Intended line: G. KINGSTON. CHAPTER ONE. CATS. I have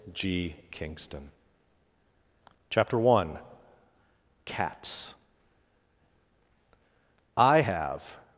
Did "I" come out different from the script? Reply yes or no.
no